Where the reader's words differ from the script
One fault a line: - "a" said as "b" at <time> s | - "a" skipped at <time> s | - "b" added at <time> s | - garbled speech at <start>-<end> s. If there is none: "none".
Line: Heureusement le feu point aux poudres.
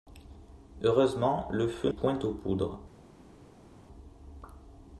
none